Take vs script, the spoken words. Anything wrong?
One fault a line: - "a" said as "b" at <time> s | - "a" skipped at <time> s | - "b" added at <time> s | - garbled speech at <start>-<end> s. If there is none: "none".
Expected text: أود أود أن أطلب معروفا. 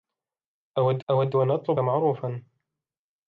none